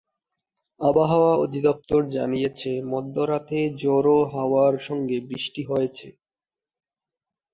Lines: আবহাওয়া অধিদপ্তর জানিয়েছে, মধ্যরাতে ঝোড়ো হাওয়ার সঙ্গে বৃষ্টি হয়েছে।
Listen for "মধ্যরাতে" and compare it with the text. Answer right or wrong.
right